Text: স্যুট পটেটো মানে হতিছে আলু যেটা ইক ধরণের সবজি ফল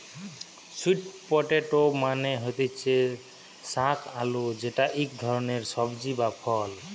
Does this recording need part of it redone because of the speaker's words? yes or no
yes